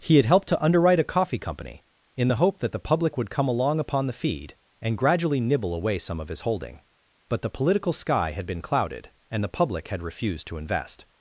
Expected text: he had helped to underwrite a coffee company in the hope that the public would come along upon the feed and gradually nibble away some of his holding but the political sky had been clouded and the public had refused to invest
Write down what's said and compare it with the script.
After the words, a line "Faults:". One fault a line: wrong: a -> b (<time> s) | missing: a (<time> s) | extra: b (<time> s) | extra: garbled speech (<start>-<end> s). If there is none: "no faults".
he had helped to underwrite a coffee company in the hope that the public would come along upon the feed and gradually nibble away some of his holding but the political sky had been clouded and the public had refused to invest
Faults:
no faults